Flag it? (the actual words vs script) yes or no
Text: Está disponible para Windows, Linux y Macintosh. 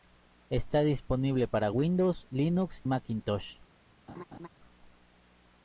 yes